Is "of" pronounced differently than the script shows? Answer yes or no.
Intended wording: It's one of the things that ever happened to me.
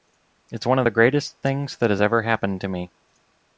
no